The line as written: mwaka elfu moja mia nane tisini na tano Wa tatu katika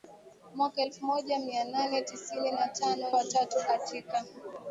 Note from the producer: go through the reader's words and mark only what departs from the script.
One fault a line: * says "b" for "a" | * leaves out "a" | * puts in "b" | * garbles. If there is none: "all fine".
all fine